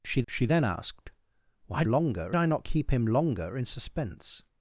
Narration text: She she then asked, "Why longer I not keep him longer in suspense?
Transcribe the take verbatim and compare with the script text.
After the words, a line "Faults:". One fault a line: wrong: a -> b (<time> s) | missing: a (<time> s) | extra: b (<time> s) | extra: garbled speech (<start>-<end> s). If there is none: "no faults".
She she then asked, "Why longer I not keep him longer in suspense?
Faults:
no faults